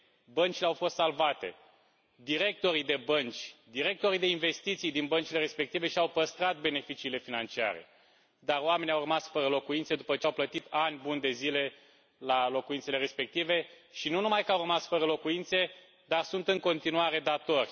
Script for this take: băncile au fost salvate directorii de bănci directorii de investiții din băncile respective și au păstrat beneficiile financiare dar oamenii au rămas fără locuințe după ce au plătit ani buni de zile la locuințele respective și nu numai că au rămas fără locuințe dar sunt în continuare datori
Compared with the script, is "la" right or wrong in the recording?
right